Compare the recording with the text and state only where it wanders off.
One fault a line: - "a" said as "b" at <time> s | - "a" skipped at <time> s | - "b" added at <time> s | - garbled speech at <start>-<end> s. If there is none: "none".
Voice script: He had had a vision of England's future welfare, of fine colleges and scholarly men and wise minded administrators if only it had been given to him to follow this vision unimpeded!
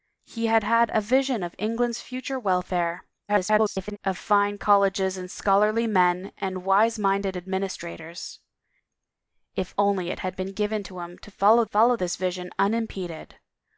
- garbled speech at 3.3-4.0 s
- "follow" added at 11.6 s